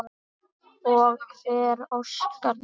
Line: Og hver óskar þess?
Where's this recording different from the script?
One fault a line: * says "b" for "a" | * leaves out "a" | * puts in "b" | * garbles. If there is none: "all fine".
all fine